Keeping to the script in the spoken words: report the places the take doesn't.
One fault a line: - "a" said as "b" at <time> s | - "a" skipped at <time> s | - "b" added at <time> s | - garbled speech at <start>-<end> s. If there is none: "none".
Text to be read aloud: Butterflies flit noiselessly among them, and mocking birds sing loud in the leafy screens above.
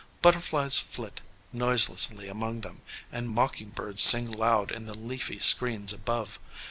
none